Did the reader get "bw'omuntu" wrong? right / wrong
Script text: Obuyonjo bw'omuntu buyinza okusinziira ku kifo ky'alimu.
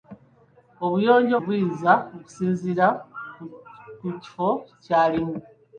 wrong